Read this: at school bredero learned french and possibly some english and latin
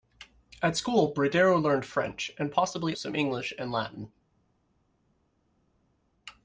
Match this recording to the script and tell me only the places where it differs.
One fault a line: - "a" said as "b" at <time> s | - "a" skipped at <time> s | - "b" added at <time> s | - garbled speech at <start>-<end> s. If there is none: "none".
none